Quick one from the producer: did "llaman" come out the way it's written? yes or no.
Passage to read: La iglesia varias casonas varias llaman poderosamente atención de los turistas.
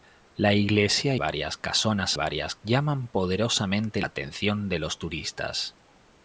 yes